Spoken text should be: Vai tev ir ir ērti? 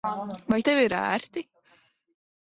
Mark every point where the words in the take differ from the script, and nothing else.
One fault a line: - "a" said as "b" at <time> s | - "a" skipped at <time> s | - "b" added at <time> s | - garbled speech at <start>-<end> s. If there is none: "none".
- "ir" skipped at 0.9 s